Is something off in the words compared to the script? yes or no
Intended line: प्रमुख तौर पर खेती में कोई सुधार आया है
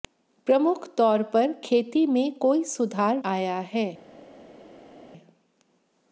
no